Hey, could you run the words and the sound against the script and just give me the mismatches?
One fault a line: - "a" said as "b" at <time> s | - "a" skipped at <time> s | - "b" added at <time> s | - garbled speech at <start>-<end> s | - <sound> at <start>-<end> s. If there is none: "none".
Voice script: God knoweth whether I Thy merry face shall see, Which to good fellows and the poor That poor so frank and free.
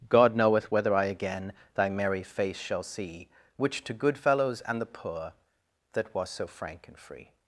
- "again" added at 1.1 s
- "poor" said as "was" at 6.1 s